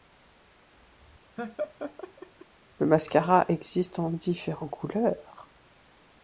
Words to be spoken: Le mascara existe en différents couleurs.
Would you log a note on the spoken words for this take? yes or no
no